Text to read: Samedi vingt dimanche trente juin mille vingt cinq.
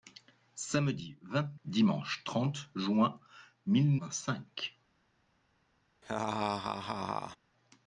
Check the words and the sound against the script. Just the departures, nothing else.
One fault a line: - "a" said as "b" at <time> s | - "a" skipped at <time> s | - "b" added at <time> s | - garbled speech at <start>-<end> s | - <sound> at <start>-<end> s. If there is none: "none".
- laugh at 6.0-7.4 s